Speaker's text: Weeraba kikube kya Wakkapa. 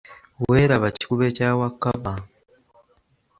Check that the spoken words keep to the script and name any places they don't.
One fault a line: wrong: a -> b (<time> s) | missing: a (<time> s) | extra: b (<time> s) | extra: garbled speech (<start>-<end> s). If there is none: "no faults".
no faults